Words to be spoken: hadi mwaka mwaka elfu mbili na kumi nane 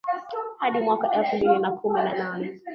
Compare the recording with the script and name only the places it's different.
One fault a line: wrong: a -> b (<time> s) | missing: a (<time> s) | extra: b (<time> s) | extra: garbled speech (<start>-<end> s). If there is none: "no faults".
missing: mwaka (1.1 s)
extra: na (2.0 s)